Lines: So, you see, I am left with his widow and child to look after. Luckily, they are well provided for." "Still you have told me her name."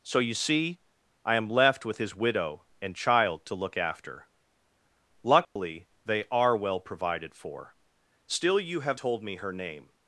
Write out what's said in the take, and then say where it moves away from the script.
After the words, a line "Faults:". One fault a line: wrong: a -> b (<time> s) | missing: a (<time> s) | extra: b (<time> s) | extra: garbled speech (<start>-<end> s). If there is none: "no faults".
So, you see, I am left with his widow and child to look after. Luckily, they are well provided for." "Still you have told me her name."
Faults:
no faults